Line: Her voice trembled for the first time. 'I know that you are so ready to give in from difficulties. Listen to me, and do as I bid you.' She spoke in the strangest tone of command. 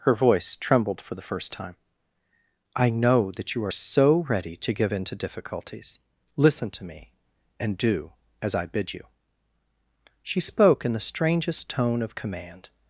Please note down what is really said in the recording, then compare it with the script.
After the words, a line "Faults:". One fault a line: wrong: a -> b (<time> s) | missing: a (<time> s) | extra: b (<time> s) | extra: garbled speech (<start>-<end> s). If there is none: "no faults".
Her voice trembled for the first time. 'I know that you are so ready to give in to difficulties. Listen to me, and do as I bid you.' She spoke in the strangest tone of command.
Faults:
wrong: from -> to (5.0 s)